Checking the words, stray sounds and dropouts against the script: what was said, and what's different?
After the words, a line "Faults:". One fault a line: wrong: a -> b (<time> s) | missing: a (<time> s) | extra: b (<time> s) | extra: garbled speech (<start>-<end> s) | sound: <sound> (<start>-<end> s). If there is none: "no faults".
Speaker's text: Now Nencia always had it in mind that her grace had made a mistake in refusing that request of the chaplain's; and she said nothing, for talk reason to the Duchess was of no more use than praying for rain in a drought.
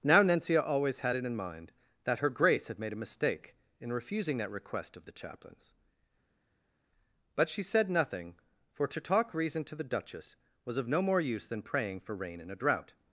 Now Nencia always had it in mind that her grace had made a mistake in refusing that request of the chaplain's; but she said nothing, for to talk reason to the Duchess was of no more use than praying for rain in a drought.
Faults:
wrong: and -> but (7.4 s)
extra: to (8.8 s)